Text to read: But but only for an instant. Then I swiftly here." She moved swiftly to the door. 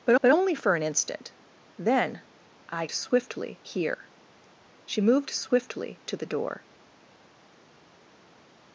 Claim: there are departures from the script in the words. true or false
false